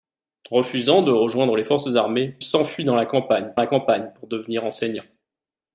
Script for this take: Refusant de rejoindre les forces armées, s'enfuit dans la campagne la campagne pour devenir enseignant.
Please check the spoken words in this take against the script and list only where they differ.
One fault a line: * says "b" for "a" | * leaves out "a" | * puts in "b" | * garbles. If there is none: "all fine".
all fine